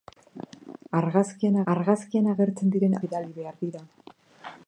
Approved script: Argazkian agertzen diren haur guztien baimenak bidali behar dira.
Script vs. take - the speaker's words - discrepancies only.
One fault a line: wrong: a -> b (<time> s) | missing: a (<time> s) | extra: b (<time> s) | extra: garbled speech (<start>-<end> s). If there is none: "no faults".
extra: argazkian (1.7 s)
missing: haur guztien baimenak (3.0 s)